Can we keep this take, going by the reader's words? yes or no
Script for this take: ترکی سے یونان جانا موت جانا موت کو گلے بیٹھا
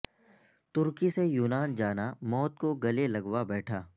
no